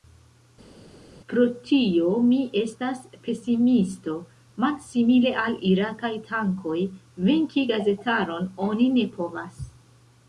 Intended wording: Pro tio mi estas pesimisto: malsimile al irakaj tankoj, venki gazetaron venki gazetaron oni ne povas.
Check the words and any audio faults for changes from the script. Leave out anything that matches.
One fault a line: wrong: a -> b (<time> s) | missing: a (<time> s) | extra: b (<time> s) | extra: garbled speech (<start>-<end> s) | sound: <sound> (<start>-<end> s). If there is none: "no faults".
missing: venki gazetaron (8.5 s)